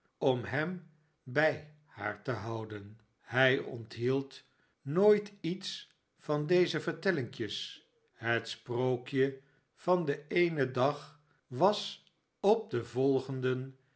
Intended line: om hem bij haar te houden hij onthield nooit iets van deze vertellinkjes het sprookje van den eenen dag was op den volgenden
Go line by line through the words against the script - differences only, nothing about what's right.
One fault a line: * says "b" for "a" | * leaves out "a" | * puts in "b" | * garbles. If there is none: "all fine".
all fine